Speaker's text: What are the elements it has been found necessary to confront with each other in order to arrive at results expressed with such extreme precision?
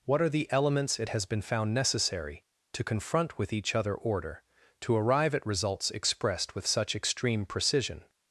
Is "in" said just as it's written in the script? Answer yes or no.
no